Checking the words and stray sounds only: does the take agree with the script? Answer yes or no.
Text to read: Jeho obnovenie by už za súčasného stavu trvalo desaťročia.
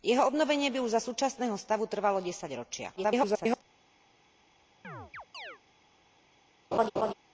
no